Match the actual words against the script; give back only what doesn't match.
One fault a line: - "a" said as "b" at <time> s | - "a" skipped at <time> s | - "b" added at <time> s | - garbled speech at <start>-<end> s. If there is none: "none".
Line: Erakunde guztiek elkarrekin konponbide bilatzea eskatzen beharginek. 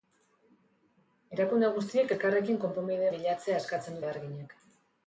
none